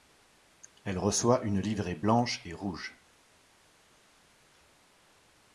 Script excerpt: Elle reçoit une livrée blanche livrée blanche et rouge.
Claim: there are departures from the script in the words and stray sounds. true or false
true